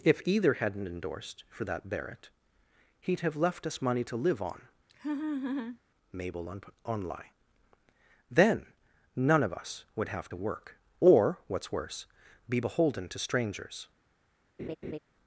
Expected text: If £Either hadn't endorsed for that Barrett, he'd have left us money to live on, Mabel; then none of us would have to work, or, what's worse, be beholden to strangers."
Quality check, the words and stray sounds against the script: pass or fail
fail